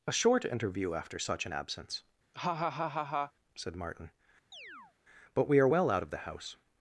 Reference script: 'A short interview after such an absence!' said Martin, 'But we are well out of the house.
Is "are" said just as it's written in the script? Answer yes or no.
yes